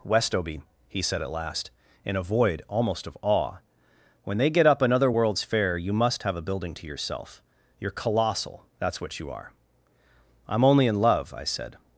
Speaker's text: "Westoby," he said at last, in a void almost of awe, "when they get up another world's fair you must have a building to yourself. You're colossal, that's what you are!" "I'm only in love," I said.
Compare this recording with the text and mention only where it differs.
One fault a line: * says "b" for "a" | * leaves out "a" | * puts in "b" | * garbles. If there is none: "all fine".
all fine